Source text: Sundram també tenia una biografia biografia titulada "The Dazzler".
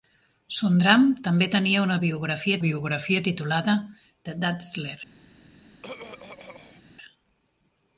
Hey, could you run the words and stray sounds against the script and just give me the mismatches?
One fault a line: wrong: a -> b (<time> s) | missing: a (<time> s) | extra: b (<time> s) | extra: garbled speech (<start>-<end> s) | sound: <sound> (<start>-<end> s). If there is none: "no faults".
sound: throat clearing (5.8-6.8 s)